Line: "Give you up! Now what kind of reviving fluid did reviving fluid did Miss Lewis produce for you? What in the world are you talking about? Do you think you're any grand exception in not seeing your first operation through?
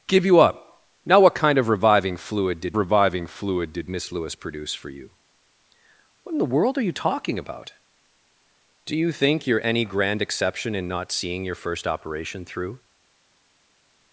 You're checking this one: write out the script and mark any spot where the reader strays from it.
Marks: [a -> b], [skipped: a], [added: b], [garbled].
"Give you up! Now what kind of reviving fluid did reviving fluid did Miss Lewis produce for you? What in the world are you talking about? Do you think you're any grand exception in not seeing your first operation through?